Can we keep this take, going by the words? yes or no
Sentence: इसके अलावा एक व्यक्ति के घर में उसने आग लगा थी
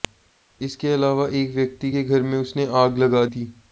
yes